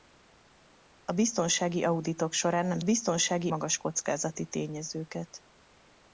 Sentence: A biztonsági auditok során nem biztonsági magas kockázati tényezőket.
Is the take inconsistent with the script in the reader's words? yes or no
no